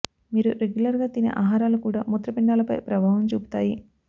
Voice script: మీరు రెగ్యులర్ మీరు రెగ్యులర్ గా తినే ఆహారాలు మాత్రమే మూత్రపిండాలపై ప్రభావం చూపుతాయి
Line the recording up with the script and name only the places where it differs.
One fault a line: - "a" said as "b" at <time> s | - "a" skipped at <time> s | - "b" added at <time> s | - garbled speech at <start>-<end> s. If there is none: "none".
- "మీరు రెగ్యులర్" skipped at 1.0 s
- "మాత్రమే" said as "కూడా" at 1.8 s